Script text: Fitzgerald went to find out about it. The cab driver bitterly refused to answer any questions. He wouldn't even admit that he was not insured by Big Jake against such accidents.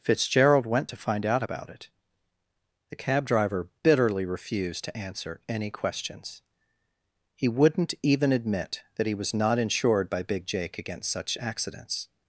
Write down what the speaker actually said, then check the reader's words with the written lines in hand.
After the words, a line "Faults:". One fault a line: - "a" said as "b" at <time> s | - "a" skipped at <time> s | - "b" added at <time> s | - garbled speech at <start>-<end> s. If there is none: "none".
Fitzgerald went to find out about it. The cab driver bitterly refused to answer any questions. He wouldn't even admit that he was not insured by Big Jake against such accidents.
Faults:
none